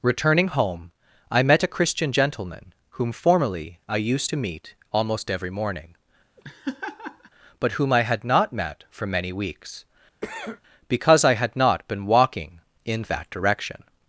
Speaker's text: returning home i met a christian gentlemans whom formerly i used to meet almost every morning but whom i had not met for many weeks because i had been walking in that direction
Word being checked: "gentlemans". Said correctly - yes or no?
no